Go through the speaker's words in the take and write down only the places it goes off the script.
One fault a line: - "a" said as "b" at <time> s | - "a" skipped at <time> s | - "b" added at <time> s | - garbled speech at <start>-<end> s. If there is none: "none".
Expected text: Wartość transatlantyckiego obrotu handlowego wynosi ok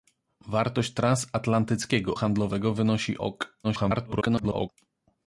- "obrotu" skipped at 2.1 s
- garbled speech at 3.6-4.7 s